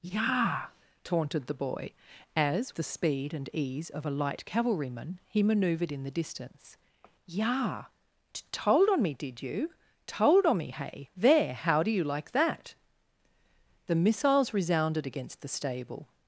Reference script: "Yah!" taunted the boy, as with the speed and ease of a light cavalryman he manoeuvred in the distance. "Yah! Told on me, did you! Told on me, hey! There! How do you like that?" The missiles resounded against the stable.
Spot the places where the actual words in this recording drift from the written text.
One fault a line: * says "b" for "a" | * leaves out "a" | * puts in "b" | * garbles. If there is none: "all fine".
* leaves out "with"